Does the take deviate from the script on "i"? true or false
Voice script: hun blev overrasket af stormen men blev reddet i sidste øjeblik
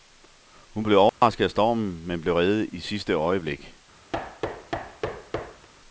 false